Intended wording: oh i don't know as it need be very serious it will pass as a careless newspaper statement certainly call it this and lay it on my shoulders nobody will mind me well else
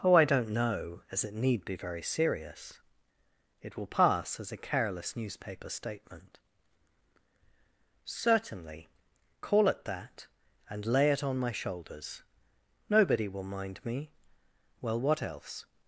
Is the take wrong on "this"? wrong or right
wrong